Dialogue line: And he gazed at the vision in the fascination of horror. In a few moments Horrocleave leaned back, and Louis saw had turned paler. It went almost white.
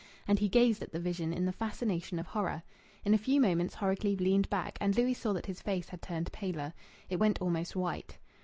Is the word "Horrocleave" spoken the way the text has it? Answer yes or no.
yes